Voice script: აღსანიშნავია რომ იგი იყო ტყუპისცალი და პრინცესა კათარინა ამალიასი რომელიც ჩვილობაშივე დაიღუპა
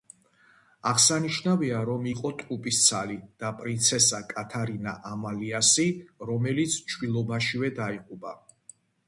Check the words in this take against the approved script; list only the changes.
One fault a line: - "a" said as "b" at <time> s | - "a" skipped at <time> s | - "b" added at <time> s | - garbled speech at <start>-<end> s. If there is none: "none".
- "იგი" skipped at 2.1 s